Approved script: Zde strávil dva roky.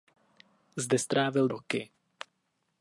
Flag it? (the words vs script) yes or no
yes